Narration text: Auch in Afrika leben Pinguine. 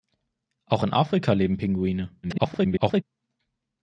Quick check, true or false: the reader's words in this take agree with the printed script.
false